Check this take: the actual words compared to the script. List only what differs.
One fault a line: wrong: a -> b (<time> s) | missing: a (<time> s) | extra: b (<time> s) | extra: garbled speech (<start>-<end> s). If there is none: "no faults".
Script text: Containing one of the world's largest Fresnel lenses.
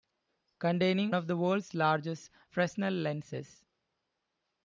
missing: one (1.1 s)